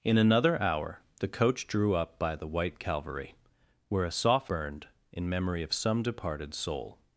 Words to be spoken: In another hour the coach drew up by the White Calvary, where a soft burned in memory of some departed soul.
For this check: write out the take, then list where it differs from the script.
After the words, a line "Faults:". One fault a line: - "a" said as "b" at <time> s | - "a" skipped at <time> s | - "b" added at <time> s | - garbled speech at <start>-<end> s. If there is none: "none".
In another hour the coach drew up by the White Calvary, where a soft burned in memory of some departed soul.
Faults:
none